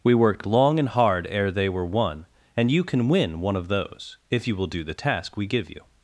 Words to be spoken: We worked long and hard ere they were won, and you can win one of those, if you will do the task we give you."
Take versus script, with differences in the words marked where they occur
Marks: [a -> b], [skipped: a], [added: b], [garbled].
We worked long and hard ere they were won, and you can win one of those, if you will do the task we give you."